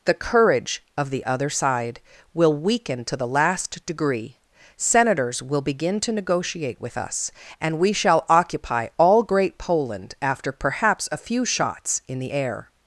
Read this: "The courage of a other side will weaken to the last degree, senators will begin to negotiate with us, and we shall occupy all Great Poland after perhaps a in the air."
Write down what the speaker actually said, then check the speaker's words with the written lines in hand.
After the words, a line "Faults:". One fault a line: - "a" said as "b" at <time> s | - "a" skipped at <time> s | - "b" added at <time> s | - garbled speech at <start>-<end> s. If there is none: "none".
"The courage of the other side will weaken to the last degree, senators will begin to negotiate with us, and we shall occupy all Great Poland after perhaps a few shots in the air."
Faults:
- "a" said as "the" at 1.1 s
- "few shots" added at 11.2 s